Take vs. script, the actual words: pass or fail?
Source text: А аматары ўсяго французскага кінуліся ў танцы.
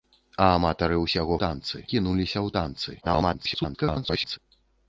fail